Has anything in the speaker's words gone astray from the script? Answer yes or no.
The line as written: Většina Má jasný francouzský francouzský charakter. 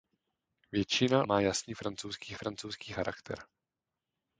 no